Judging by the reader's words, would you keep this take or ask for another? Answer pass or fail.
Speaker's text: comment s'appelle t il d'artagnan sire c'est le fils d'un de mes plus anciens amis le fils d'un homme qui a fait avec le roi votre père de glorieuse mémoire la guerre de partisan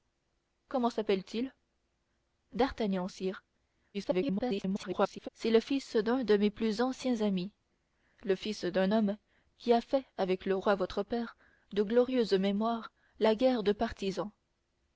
fail